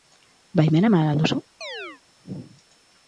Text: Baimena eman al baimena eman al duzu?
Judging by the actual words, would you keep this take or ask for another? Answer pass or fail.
fail